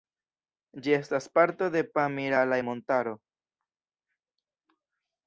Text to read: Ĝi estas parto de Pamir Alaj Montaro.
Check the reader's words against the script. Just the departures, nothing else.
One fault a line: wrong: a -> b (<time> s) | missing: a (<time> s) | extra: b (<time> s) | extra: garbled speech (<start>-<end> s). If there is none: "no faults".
no faults